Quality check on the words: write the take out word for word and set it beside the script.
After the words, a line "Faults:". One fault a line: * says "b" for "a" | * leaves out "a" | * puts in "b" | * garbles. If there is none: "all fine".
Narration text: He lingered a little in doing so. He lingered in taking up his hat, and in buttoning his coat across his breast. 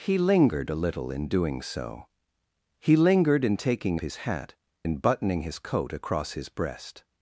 He lingered a little in doing so. He lingered in taking his hat, in buttoning his coat across his breast.
Faults:
* leaves out "up"
* leaves out "and"